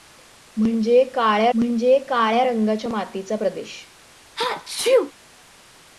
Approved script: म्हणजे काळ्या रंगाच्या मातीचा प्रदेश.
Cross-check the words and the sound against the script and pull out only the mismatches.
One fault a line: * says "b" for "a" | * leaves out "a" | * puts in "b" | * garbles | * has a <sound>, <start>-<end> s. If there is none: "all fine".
* puts in "म्हणजे काळ्या"
* has a sneeze, 4.4-5.1 s